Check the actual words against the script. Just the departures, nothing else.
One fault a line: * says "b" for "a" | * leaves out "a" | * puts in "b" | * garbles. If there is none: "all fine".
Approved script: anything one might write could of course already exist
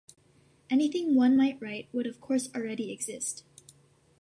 * says "would" for "could"